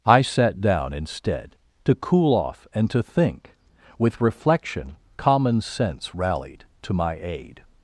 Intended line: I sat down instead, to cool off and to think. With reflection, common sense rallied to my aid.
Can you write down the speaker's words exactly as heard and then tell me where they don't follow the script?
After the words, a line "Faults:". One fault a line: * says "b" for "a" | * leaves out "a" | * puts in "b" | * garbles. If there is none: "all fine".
I sat down instead, to cool off and to think. With reflection, common sense rallied to my aid.
Faults:
all fine